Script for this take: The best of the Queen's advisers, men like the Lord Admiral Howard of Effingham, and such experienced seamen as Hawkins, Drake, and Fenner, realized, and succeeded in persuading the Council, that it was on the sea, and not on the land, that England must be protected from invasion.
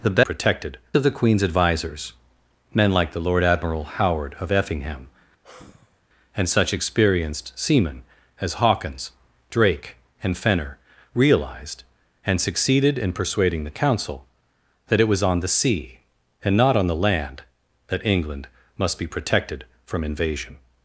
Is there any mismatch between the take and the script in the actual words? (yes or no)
yes